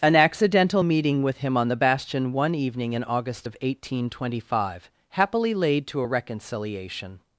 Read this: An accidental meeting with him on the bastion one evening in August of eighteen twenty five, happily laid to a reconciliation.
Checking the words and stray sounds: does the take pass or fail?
pass